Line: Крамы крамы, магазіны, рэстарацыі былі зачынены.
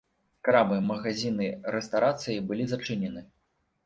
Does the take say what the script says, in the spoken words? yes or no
no